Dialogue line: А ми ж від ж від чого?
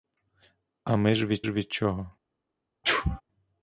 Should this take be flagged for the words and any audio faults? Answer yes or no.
yes